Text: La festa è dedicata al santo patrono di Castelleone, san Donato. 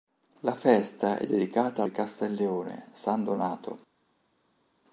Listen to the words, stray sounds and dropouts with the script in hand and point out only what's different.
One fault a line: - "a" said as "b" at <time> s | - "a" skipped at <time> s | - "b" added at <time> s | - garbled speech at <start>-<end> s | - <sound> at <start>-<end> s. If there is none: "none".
- "al santo patrono" skipped at 1.8 s